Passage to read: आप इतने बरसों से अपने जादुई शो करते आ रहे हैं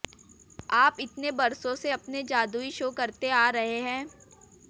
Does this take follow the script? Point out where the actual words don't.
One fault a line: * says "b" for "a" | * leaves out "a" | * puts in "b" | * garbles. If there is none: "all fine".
all fine